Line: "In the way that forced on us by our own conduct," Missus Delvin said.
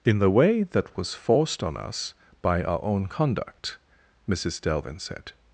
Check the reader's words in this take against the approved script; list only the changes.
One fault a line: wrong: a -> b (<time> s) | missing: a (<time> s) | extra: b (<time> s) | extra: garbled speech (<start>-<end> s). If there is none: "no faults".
extra: was (1.0 s)